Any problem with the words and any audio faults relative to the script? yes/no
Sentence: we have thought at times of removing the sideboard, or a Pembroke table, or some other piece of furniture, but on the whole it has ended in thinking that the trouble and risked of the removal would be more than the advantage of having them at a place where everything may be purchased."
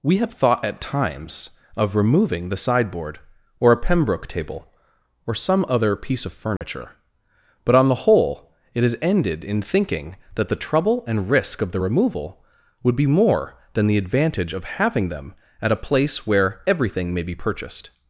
yes